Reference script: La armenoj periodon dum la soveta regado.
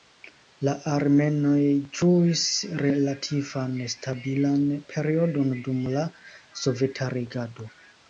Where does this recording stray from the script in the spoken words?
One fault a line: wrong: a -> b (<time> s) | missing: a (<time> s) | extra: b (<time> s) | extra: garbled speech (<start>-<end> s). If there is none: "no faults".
extra: ĝuis relativan stabilan (2.0 s)